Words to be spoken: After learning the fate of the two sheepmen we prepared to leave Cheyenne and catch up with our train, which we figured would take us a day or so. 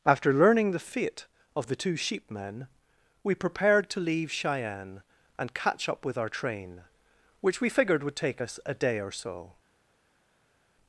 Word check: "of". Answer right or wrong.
right